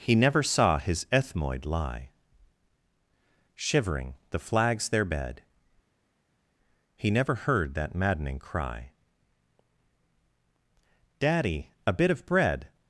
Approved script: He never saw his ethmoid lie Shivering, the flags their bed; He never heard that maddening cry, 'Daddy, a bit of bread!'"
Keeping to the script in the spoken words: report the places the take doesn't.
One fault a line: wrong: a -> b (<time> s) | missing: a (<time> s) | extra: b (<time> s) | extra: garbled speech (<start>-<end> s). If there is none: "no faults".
no faults